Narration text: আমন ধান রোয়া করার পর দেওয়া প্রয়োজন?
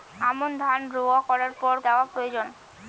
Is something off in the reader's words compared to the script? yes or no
no